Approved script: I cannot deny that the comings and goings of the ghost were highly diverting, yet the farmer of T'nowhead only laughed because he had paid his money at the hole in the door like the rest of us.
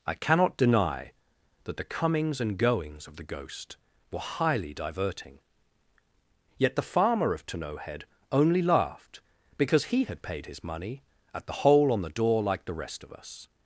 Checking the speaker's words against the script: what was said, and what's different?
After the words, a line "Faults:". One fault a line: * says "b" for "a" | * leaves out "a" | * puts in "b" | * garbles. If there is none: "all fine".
I cannot deny that the comings and goings of the ghost were highly diverting, yet the farmer of T'nowhead only laughed because he had paid his money at the hole on the door like the rest of us.
Faults:
* says "on" for "in"